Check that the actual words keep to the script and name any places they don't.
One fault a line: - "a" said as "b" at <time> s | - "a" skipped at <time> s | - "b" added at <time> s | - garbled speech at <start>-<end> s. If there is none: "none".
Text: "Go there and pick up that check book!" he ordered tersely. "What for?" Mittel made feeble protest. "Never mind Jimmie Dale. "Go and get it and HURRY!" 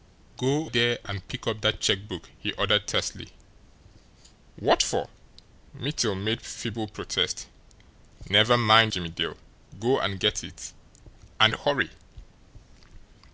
none